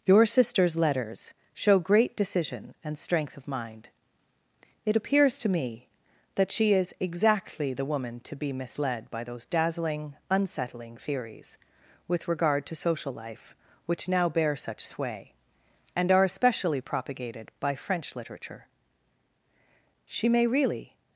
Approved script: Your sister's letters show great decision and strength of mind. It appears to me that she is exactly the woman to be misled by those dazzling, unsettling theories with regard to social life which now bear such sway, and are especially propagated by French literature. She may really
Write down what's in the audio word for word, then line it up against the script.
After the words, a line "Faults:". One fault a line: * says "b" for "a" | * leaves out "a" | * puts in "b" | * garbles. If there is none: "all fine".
Your sister's letters show great decision and strength of mind. It appears to me that she is exactly the woman to be misled by those dazzling, unsettling theories with regard to social life which now bear such sway, and are especially propagated by French literature. She may really
Faults:
all fine